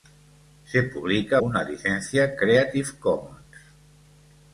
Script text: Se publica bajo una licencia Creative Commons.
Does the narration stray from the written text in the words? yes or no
yes